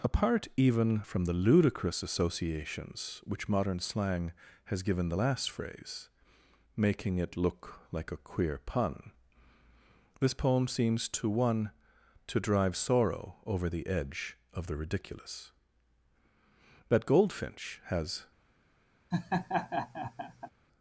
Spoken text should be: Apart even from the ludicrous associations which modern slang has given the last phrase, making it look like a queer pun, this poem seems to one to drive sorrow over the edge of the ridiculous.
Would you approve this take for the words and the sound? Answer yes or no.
no